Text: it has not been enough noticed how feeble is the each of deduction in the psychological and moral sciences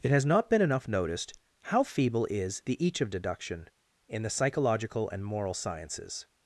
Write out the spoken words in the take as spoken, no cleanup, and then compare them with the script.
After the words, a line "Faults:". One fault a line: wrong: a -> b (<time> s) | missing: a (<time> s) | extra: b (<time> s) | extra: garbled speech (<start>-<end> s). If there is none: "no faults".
it has not been enough noticed how feeble is the each of deduction in the psychological and moral sciences
Faults:
no faults